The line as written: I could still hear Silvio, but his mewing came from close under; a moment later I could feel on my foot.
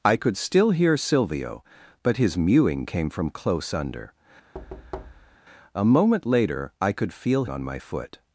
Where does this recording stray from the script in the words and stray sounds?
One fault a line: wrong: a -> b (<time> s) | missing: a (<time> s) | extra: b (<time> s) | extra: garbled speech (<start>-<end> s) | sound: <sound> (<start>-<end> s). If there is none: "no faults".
sound: thud (4.5-5.4 s)